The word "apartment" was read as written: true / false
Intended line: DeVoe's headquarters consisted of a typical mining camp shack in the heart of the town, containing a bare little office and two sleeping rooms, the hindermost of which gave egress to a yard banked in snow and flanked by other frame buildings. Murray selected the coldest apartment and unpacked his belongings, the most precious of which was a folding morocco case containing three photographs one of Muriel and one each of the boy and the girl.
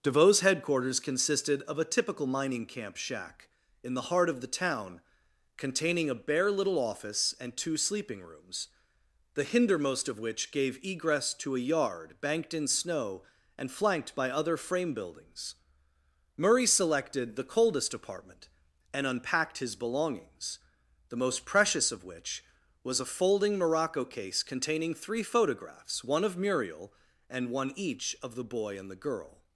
true